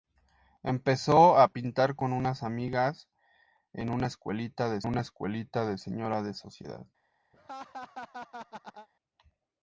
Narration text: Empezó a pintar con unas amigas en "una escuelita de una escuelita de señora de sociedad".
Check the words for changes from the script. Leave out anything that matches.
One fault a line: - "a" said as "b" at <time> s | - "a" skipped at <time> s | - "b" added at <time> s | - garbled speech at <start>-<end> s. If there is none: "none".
none